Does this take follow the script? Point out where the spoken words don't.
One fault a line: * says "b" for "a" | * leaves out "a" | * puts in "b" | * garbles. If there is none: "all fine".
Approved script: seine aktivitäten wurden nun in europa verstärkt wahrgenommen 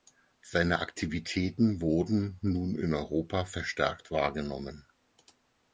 all fine